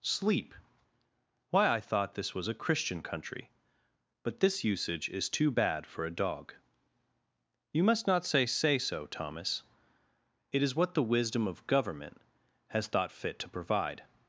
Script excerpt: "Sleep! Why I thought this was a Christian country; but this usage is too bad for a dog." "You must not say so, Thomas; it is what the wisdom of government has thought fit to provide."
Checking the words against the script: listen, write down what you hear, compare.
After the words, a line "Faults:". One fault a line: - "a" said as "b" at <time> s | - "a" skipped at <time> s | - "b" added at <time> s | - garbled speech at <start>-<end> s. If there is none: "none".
"Sleep! Why I thought this was a Christian country; but this usage is too bad for a dog." "You must not say say so, Thomas; it is what the wisdom of government has thought fit to provide."
Faults:
- "say" added at 8.5 s